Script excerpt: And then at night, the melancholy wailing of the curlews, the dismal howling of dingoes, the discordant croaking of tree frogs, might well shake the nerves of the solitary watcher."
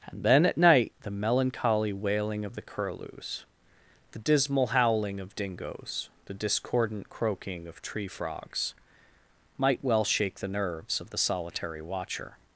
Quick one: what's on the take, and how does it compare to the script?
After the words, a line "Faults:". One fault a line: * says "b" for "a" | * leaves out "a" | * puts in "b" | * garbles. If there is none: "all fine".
And then at night, the melancholy wailing of the curlews, the dismal howling of dingoes, the discordant croaking of tree frogs, might well shake the nerves of the solitary watcher."
Faults:
all fine